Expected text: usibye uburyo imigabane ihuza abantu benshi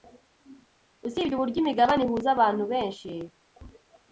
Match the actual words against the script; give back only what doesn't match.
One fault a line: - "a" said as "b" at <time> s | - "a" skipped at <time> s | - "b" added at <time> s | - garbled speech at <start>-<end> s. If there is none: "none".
none